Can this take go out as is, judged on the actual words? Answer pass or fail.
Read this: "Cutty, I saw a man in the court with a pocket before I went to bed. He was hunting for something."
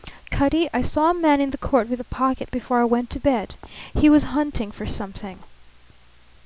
pass